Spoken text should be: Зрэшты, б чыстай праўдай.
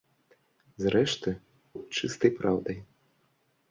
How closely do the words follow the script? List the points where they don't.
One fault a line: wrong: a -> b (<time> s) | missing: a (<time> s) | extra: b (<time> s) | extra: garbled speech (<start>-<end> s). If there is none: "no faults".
no faults